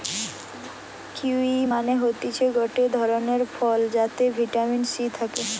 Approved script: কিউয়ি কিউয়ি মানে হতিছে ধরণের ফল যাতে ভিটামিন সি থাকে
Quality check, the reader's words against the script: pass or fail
fail